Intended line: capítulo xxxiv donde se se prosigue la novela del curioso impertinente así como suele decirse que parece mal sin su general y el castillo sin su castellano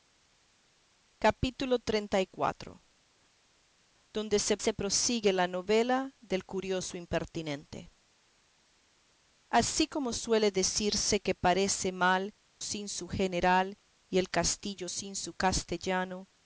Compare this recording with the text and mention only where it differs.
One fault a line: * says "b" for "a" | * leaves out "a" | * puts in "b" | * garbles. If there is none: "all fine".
all fine